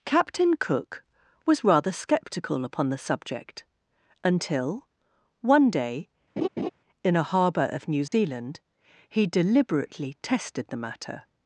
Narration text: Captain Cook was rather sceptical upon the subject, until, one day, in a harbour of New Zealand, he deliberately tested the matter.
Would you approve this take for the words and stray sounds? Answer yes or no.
no